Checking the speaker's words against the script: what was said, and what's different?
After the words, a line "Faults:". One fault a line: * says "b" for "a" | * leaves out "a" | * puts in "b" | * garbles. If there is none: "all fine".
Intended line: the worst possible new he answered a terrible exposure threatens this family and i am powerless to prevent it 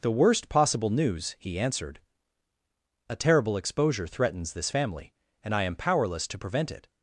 the worst possible news he answered a terrible exposure threatens this family and i am powerless to prevent it
Faults:
* says "news" for "new"